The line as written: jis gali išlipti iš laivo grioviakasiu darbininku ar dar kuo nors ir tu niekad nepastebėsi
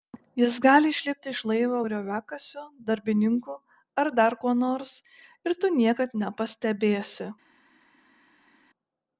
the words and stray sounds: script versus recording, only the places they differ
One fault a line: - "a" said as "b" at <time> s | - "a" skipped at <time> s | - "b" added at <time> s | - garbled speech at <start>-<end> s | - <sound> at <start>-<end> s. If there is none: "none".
none